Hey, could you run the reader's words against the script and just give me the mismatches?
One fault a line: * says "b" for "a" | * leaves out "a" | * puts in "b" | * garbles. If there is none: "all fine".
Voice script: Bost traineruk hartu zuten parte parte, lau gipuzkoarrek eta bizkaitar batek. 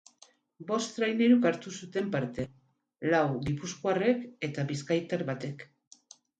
* leaves out "parte"